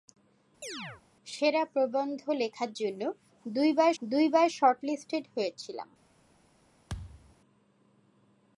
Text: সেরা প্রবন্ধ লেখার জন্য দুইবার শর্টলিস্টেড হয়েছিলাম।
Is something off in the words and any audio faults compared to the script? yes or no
yes